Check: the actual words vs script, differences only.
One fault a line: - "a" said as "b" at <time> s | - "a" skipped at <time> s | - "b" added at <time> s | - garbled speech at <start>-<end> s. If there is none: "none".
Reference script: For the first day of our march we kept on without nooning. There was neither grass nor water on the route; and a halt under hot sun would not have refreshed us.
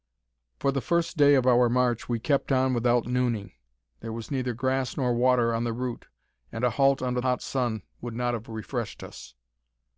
none